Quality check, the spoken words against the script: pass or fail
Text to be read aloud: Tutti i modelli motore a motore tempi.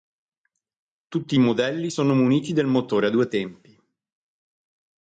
fail